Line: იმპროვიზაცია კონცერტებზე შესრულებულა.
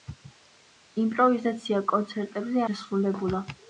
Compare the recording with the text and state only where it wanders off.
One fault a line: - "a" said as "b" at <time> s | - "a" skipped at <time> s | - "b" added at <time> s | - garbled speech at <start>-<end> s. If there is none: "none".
none